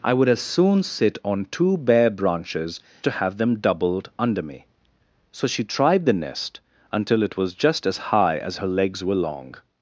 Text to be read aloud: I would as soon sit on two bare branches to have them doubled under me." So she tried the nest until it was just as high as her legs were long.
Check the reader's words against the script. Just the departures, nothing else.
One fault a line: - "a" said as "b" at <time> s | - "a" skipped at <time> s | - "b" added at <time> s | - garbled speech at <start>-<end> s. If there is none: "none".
none